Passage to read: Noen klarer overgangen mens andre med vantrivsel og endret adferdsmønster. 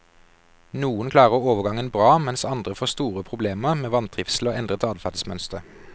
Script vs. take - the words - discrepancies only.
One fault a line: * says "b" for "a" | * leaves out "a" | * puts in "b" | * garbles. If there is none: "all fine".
* puts in "bra"
* puts in "får store problemer"